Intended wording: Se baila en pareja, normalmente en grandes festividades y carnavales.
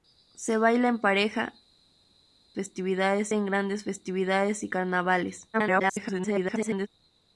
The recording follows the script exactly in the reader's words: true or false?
false